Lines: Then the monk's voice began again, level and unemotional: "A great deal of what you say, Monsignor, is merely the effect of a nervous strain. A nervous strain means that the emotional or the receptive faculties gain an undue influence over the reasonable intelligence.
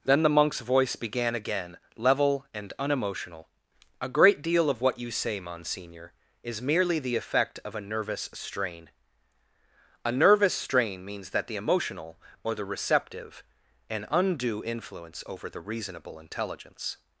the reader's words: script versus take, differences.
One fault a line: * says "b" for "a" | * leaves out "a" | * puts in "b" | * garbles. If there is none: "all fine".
* leaves out "faculties gain"